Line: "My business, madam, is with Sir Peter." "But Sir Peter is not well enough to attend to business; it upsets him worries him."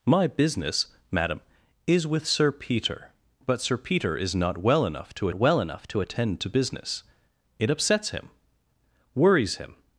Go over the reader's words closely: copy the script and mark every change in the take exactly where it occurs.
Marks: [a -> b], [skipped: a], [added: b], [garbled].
"My business, madam, is with Sir Peter." "But Sir Peter is not well enough to [added: well enough to] attend to business; it upsets him worries him."